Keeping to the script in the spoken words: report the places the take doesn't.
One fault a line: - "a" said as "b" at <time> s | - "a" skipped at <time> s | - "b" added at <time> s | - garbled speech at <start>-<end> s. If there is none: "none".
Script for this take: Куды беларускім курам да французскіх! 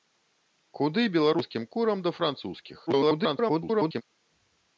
- garbled speech at 2.9-4.0 s